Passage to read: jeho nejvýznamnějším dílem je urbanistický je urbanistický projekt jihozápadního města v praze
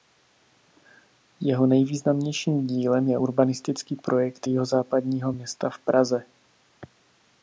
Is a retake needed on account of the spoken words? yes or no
yes